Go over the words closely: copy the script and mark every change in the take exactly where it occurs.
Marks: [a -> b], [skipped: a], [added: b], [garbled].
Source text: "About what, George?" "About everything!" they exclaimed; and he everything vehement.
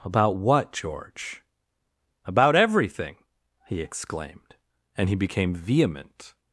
"About what, George?" "About everything!" [they -> he] exclaimed; and he [everything -> became] vehement.